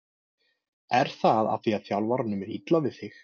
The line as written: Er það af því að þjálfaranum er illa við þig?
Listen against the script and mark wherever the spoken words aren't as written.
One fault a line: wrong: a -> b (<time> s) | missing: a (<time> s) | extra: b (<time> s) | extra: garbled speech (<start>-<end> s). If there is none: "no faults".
no faults